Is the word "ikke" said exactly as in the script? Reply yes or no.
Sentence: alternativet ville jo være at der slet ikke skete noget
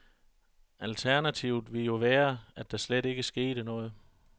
yes